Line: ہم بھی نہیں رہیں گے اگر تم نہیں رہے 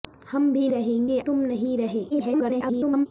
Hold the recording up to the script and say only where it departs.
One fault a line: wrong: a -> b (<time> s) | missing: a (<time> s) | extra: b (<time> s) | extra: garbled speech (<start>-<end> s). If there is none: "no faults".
missing: نہیں (0.7 s)
missing: اگر (1.2 s)
extra: garbled speech (2.1-3.1 s)